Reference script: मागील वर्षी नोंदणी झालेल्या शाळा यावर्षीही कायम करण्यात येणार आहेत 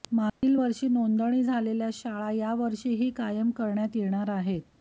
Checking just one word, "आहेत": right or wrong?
right